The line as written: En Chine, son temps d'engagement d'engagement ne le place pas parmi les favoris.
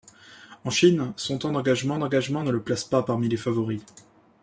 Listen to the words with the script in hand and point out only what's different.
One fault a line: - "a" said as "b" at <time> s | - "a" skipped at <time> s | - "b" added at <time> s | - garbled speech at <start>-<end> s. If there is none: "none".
none